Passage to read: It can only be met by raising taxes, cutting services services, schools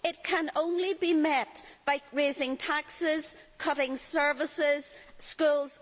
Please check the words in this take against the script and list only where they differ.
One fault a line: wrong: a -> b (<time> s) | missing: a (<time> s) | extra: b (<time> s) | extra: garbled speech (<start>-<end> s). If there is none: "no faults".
missing: services (4.9 s)